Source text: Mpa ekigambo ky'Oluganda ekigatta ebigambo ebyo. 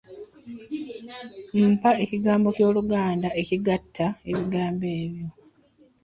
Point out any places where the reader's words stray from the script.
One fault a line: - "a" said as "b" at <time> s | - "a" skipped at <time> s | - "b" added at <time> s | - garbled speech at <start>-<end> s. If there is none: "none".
none